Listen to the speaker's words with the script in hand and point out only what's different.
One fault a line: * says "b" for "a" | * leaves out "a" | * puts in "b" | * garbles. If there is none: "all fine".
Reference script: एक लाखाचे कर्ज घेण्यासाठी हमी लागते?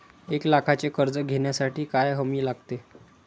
* puts in "काय"